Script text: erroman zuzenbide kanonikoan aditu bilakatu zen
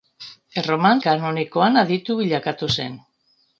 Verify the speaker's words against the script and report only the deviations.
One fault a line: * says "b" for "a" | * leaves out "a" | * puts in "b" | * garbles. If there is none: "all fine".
* leaves out "zuzenbide"